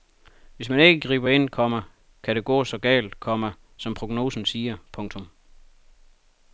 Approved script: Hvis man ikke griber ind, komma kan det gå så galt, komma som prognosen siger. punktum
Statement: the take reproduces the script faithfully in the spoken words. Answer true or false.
true